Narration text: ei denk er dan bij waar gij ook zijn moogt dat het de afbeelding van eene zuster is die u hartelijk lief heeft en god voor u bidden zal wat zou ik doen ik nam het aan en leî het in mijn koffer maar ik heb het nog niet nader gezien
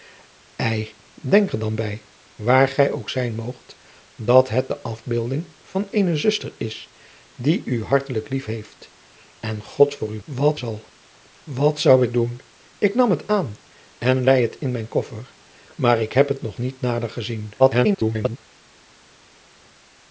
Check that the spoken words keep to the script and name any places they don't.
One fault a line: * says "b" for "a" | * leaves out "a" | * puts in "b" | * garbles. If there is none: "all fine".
* says "wat" for "bidden"
* garbles